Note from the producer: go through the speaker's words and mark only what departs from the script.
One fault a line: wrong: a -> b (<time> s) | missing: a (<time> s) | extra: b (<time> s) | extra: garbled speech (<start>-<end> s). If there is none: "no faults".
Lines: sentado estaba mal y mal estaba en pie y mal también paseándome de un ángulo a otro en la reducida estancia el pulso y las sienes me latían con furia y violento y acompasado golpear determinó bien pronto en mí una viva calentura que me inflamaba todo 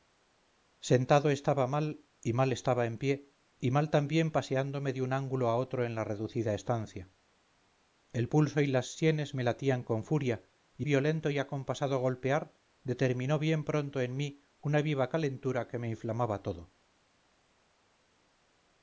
no faults